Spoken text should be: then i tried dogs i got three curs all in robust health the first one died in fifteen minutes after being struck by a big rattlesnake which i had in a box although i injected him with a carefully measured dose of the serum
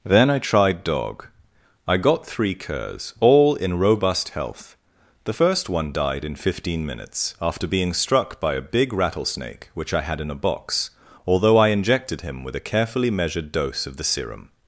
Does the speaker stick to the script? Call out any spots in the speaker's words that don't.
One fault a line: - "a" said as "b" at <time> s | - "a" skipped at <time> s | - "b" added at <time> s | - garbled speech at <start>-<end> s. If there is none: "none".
- "dogs" said as "dog" at 0.8 s